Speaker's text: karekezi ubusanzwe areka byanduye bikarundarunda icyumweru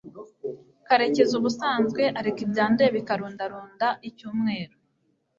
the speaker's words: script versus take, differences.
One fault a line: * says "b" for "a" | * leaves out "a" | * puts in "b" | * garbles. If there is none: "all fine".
all fine